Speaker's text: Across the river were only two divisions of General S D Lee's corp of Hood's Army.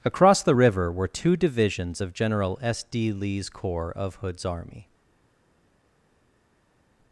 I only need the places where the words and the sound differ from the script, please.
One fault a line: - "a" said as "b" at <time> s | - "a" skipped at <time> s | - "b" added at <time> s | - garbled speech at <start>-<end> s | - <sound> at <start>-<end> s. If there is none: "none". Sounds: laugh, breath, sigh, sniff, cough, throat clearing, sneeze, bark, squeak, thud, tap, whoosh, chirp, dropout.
- "only" skipped at 1.1 s
- "corp" said as "corps" at 3.5 s